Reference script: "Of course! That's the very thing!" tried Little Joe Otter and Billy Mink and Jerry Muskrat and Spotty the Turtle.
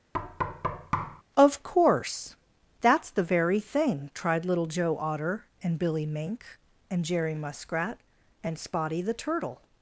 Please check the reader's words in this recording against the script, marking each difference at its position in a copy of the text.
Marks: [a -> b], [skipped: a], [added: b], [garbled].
"Of course! That's the very thing!" tried Little Joe Otter and Billy Mink and Jerry Muskrat and Spotty the Turtle.